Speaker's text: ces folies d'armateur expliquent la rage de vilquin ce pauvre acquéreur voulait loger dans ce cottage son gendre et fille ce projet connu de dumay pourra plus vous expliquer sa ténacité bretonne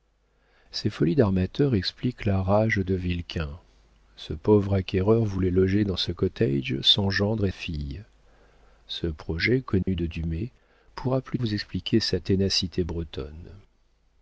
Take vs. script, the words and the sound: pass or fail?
fail